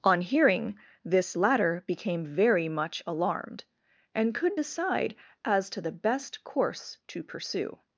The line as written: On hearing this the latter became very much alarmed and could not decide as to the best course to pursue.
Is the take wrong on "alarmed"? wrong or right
right